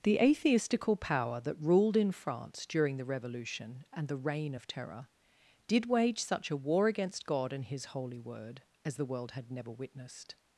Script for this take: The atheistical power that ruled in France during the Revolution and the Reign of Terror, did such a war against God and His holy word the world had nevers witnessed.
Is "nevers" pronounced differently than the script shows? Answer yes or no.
yes